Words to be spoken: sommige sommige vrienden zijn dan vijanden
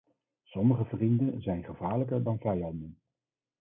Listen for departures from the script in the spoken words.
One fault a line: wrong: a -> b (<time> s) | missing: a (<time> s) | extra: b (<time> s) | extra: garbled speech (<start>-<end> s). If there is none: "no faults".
missing: sommige (0.8 s)
extra: gevaarlijker (1.6 s)